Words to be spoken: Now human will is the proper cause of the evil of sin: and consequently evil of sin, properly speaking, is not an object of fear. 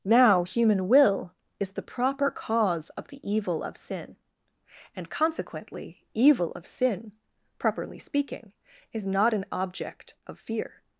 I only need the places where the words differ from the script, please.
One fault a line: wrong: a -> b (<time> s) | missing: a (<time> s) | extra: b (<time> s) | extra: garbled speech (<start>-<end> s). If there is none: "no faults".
no faults